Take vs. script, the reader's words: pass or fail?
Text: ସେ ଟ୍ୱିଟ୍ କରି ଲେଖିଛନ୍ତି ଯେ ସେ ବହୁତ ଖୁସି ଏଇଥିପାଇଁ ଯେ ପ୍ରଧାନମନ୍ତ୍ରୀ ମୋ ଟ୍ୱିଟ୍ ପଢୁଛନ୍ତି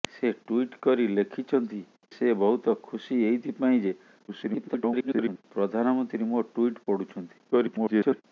fail